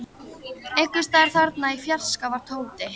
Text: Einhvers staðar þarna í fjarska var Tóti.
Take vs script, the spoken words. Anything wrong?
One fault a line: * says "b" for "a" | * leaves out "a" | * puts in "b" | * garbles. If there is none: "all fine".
all fine